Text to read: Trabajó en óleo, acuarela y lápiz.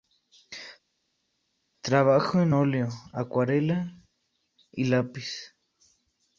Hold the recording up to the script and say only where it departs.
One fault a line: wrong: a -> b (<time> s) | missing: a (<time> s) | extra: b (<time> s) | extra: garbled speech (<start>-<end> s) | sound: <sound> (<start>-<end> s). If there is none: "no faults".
no faults